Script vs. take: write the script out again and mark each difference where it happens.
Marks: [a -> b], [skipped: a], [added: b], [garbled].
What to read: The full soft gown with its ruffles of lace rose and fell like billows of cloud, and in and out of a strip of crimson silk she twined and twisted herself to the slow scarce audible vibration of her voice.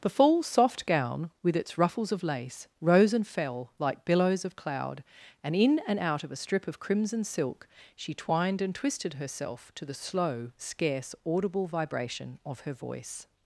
The full soft gown with its ruffles of lace rose and fell like billows of cloud, and in and out of a strip of crimson silk she twined and twisted herself to the slow scarce audible vibration of her voice.